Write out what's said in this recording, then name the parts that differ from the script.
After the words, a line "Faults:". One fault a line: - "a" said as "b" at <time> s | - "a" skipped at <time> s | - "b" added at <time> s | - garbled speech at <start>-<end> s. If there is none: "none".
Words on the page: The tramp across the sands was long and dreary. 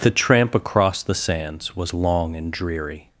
The tramp across the sands was long and dreary.
Faults:
none